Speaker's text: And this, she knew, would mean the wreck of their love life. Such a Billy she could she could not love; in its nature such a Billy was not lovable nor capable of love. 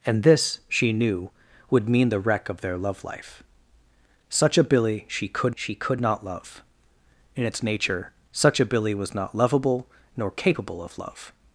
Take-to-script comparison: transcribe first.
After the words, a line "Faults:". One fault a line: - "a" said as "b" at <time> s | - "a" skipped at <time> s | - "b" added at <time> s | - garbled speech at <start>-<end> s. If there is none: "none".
And this, she knew, would mean the wreck of their love life. Such a Billy she could she could not love; in its nature such a Billy was not lovable nor capable of love.
Faults:
none